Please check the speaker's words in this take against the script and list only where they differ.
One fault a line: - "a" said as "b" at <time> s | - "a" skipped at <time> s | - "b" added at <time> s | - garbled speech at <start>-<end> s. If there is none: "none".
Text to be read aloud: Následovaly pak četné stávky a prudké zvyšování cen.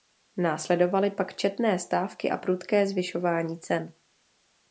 none